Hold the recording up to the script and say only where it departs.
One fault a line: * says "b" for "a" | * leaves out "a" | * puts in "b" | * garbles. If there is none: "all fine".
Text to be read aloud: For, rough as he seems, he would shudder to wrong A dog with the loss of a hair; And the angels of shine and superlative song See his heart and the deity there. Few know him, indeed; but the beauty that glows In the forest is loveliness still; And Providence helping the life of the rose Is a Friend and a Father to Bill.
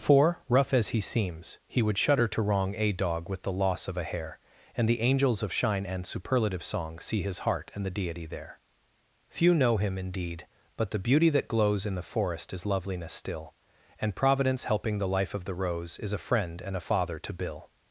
all fine